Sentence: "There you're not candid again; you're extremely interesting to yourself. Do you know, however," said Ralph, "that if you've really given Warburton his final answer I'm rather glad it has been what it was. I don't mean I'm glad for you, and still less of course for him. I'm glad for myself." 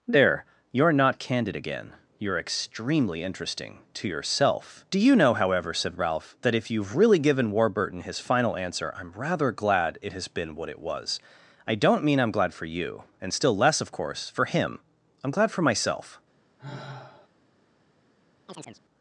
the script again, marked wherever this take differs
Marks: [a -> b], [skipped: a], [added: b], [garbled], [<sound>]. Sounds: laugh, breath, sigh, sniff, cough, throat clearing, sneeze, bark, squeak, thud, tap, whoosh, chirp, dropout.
"There you're not candid again; you're extremely interesting to yourself. Do you know, however," said Ralph, "that if you've really given Warburton his final answer I'm rather glad it has been what it was. I don't mean I'm glad for you, and still less of course for him. I'm glad for myself." [sigh] [chirp]